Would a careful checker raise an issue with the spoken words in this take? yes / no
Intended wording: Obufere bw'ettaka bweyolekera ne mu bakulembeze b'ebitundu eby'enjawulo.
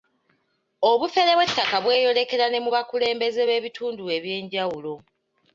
no